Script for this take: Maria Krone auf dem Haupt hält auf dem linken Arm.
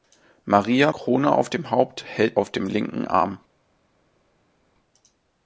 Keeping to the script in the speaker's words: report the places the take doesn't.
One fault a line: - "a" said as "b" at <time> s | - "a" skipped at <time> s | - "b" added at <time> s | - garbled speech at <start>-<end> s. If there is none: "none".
none